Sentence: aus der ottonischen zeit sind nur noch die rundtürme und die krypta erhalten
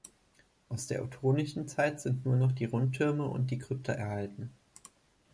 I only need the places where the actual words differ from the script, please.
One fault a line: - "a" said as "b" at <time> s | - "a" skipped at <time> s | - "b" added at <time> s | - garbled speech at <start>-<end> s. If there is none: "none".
none